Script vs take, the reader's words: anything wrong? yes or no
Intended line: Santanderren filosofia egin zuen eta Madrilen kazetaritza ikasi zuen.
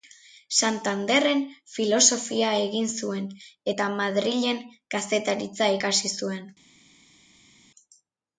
no